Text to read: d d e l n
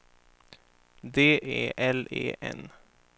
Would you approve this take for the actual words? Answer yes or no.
no